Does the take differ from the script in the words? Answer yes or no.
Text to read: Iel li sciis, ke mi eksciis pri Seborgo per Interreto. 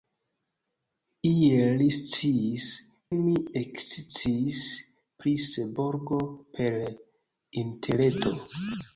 yes